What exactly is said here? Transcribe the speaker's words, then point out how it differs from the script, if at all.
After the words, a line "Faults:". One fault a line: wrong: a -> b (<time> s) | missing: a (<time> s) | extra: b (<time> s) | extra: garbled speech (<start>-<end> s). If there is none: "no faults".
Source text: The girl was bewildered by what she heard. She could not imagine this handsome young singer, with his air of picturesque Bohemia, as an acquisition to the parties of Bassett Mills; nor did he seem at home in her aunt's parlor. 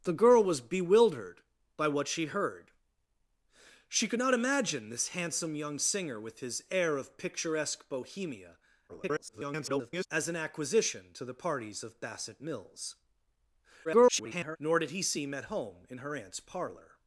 The girl was bewildered by what she heard. She could not imagine this handsome young singer, with his air of picturesque Bohemia, [garbled] as an acquisition to the parties of Bassett Mills; [garbled] nor did he seem at home in her aunt's parlor.
Faults:
extra: garbled speech (8.9-10.1 s)
extra: garbled speech (13.8-14.6 s)